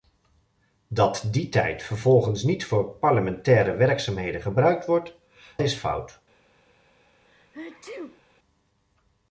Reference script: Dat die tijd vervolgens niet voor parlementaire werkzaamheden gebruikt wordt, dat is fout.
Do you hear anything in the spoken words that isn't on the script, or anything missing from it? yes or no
yes